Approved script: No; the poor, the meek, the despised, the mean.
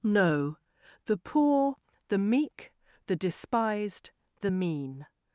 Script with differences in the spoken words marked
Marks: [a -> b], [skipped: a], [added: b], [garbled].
No; the poor, the meek, the despised, the mean.